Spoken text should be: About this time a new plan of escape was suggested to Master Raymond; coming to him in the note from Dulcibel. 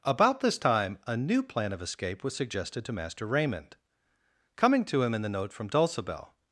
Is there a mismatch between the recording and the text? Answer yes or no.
no